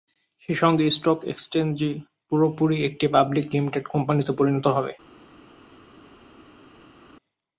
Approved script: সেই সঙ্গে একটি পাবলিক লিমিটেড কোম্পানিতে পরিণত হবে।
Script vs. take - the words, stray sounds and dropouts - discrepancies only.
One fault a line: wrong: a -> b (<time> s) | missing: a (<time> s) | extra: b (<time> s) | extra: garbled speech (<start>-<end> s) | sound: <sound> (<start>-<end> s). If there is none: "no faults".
extra: স্টক এক্সচেঞ্জটি পুরোপুরি (0.9 s)